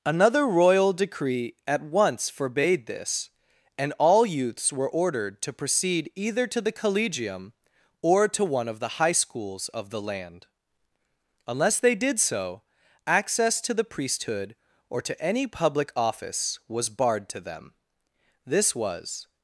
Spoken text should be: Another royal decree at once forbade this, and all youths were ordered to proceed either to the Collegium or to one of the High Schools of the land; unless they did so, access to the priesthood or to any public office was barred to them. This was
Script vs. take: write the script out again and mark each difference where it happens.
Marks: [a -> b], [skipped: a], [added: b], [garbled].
Another royal decree at once forbade this, and all youths were ordered to proceed either to the Collegium or to one of the High Schools of the land; unless they did so, access to the priesthood or to any public office was barred to them. This was